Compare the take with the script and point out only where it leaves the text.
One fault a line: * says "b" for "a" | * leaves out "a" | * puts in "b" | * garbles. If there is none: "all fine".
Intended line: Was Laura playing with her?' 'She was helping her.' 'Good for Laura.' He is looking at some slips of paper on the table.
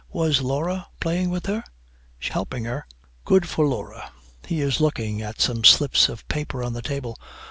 * leaves out "was"